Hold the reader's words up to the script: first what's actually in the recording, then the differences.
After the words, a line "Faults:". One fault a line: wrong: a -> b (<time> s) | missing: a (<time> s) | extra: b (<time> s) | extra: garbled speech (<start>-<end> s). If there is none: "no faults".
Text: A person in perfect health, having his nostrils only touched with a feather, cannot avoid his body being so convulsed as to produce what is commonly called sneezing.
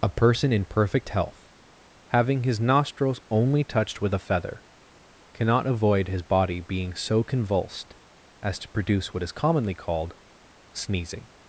A person in perfect health, having his nostrils only touched with a feather, cannot avoid his body being so convulsed as to produce what is commonly called sneezing.
Faults:
no faults